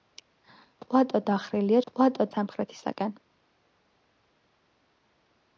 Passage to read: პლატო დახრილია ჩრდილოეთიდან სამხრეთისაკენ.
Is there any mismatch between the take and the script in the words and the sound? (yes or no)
yes